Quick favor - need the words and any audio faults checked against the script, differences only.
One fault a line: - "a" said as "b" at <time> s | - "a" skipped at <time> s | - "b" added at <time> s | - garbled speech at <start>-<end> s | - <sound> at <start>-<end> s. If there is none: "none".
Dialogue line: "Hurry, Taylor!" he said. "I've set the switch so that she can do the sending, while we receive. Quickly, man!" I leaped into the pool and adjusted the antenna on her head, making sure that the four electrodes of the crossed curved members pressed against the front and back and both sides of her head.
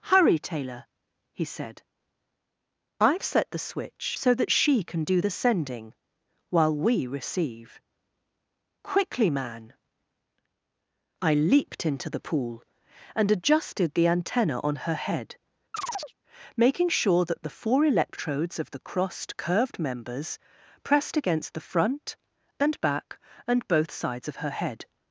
- chirp at 15.7-16.1 s